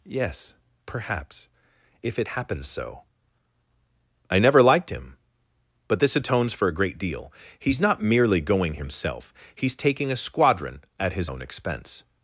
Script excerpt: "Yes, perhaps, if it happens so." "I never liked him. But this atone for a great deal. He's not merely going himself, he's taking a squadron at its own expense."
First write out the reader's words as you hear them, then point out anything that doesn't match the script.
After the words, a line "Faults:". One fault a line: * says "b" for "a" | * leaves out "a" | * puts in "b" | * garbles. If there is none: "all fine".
"Yes, perhaps, if it happens so." "I never liked him. But this atones for a great deal. He's not merely going himself, he's taking a squadron at his own expense."
Faults:
* says "atones" for "atone"
* says "his" for "its"